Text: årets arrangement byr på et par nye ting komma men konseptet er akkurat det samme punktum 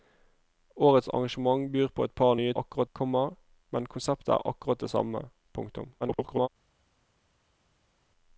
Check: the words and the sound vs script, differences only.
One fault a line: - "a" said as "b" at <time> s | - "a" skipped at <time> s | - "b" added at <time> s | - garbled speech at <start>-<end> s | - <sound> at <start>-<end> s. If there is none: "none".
- "ting" said as "akkurat" at 2.6 s
- garbled speech at 6.0-6.5 s